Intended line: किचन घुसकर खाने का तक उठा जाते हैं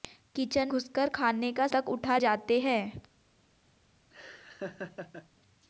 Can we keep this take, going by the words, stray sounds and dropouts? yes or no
no